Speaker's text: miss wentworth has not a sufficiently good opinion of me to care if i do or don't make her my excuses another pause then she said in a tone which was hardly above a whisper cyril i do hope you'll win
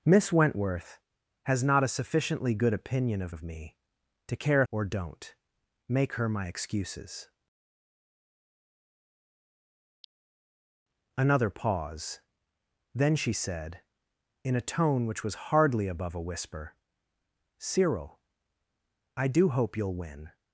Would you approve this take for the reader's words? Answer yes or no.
no